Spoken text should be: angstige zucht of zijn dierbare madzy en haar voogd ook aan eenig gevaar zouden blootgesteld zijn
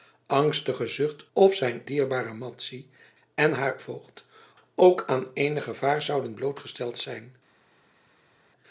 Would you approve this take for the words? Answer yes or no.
yes